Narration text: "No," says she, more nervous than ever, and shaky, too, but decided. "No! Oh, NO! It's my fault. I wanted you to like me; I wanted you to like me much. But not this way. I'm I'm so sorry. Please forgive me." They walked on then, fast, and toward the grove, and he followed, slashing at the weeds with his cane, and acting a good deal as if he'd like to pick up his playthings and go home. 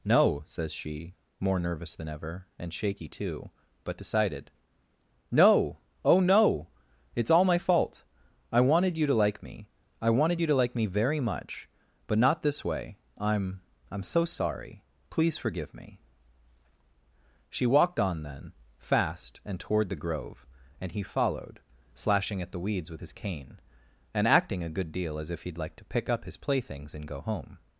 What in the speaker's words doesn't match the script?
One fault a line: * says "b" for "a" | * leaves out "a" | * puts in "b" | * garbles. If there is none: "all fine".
* puts in "all"
* puts in "very"
* says "She" for "They"